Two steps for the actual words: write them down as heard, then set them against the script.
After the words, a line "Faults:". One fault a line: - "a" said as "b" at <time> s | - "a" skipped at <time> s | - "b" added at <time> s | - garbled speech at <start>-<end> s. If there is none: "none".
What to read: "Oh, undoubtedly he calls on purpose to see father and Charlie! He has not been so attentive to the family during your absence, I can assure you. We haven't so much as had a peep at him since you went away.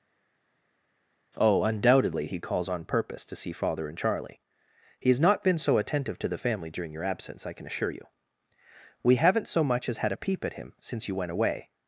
"Oh, undoubtedly he calls on purpose to see father and Charlie! He has not been so attentive to the family during your absence, I can assure you. We haven't so much as had a peep at him since you went away.
Faults:
none